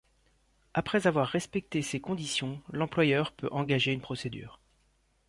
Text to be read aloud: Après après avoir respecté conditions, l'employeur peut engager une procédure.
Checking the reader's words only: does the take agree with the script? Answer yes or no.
no